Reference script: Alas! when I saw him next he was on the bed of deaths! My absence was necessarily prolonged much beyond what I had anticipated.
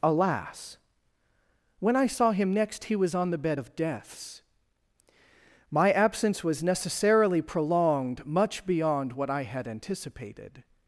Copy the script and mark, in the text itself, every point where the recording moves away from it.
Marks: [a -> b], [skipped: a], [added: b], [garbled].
Alas! when I saw him next he was on the bed of deaths! My absence was necessarily prolonged much beyond what I had anticipated.